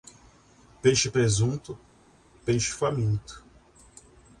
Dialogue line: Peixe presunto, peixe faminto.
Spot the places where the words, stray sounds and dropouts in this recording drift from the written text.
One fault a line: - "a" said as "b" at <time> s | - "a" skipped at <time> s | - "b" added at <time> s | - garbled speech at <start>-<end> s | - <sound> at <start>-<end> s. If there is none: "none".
none